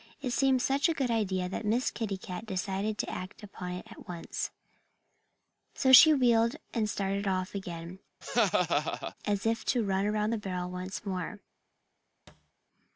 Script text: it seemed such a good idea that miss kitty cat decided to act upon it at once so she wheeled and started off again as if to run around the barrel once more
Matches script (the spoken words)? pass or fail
pass